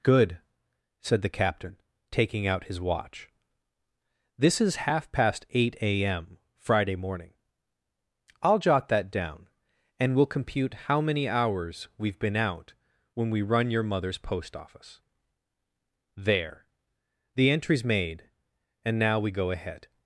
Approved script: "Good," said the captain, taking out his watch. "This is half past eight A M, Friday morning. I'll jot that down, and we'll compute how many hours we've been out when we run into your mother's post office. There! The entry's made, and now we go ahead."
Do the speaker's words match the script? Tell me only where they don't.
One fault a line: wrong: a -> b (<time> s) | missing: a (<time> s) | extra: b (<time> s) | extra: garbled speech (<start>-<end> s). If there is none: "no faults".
missing: into (13.7 s)